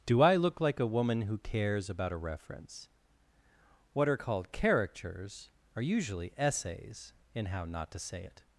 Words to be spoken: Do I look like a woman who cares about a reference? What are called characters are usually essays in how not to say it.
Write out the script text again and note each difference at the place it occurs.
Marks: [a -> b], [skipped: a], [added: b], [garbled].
Do I look like a woman who cares about a reference? What are called characters are usually essays in how not to say it.